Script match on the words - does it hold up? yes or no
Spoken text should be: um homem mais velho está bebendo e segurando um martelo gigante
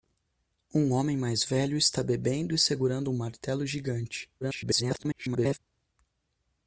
no